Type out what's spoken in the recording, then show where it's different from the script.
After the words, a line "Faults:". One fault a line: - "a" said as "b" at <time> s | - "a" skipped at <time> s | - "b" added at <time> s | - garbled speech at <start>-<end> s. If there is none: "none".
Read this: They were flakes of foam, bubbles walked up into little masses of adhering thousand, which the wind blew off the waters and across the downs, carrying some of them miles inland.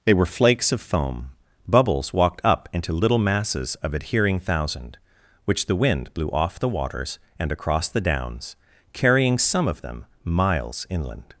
They were flakes of foam, bubbles walked up into little masses of adhering thousand, which the wind blew off the waters and across the downs, carrying some of them miles inland.
Faults:
none